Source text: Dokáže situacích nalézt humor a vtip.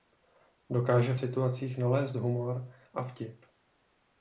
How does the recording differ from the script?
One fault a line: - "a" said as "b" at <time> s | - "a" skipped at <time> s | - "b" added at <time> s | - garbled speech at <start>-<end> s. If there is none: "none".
none